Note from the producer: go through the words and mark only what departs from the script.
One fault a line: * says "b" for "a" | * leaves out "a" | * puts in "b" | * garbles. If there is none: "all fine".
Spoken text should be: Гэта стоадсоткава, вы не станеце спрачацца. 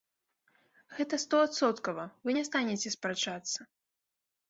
all fine